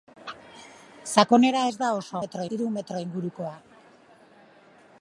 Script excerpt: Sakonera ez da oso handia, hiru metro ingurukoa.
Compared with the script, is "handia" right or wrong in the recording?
wrong